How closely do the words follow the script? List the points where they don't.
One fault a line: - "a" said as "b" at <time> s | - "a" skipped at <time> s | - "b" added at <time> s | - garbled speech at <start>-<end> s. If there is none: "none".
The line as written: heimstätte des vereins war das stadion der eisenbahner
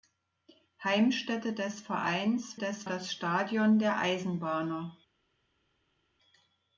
- "war" said as "des" at 2.6 s